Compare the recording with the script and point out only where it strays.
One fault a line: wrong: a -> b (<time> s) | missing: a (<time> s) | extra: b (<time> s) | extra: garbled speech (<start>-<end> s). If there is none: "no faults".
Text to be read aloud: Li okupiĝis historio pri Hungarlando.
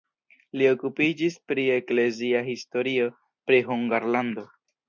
extra: pri eklezia (1.5 s)